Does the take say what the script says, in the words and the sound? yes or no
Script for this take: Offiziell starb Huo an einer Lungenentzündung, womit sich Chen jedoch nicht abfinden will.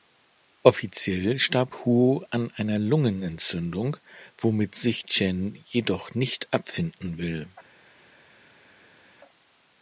yes